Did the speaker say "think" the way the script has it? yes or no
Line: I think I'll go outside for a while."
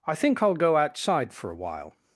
yes